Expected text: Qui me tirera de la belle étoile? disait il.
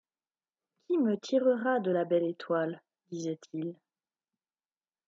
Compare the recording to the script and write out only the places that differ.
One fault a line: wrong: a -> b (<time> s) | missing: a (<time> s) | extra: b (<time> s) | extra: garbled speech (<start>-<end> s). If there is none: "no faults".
no faults